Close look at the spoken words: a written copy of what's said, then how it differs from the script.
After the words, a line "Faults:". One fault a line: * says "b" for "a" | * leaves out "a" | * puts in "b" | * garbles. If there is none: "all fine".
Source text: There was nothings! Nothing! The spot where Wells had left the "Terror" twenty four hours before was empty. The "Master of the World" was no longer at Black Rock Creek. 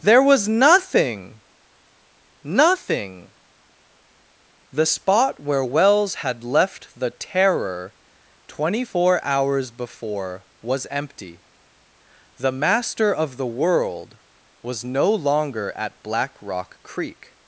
There was nothing! Nothing! The spot where Wells had left the "Terror" twenty four hours before was empty. The "Master of the World" was no longer at Black Rock Creek.
Faults:
* says "nothing" for "nothings"